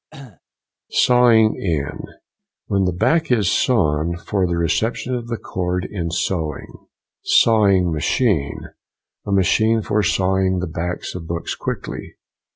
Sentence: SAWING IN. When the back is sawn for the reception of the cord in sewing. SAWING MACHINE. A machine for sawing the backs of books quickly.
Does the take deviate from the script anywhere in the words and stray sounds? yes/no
yes